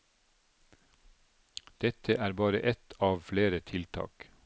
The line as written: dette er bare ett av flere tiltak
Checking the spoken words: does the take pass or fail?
pass